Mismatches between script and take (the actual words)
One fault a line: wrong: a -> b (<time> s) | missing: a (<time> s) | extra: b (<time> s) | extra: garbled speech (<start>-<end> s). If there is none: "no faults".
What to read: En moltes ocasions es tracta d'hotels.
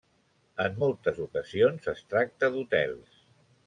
no faults